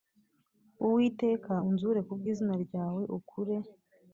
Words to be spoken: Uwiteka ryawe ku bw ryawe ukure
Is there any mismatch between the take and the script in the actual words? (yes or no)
yes